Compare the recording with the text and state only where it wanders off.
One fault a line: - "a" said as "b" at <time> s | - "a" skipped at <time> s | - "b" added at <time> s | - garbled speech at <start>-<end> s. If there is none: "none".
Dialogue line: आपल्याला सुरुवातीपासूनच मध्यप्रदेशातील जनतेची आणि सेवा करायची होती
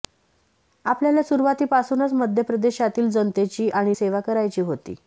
none